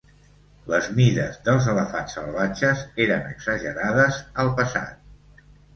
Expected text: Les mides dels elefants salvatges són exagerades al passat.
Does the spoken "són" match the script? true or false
false